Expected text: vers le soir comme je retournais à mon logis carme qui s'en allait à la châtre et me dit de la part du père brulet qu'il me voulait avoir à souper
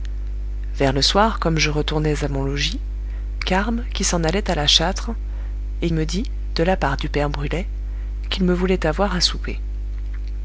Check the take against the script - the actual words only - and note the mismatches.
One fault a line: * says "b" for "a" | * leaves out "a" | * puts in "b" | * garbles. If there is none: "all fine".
all fine